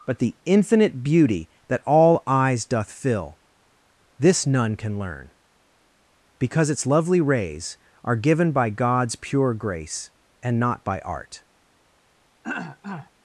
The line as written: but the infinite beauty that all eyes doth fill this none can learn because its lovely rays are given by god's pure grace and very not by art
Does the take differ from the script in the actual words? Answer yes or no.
yes